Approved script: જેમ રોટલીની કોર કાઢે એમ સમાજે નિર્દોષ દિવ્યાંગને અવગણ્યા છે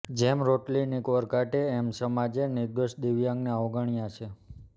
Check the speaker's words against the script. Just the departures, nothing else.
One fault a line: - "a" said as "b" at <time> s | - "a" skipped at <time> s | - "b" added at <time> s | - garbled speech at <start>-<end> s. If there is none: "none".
none